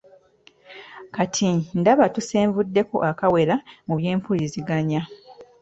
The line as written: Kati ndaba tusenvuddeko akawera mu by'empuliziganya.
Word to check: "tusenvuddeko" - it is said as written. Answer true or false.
true